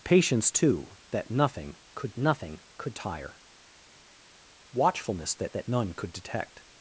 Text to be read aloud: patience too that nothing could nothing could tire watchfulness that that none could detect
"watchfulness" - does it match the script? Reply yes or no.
yes